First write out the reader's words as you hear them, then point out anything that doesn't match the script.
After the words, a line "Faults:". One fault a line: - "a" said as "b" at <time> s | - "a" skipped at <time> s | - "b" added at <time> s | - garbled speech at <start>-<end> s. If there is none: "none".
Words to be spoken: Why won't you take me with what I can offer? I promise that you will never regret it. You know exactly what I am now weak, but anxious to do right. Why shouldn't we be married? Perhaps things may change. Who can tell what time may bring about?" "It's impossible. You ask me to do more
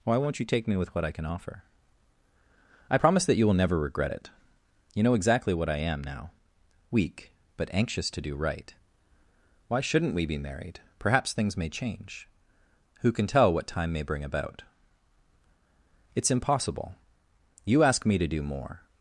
Why won't you take me with what I can offer? I promise that you will never regret it. You know exactly what I am now weak, but anxious to do right. Why shouldn't we be married? Perhaps things may change. Who can tell what time may bring about?" "It's impossible. You ask me to do more
Faults:
none